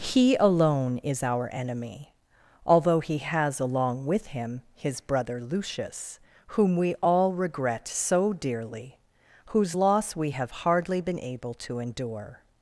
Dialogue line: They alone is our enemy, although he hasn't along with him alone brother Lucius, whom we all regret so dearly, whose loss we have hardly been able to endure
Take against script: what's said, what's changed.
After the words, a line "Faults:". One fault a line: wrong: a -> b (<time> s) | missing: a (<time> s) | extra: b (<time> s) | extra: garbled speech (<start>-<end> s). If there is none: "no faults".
He alone is our enemy, although he has along with him his brother Lucius, whom we all regret so dearly, whose loss we have hardly been able to endure
Faults:
wrong: They -> He (0.0 s)
wrong: hasn't -> has (3.2 s)
wrong: alone -> his (4.8 s)